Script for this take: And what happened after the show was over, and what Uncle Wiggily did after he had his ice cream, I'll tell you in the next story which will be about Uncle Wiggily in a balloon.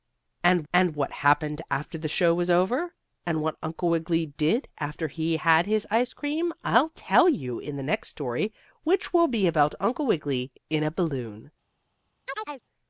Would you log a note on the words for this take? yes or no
yes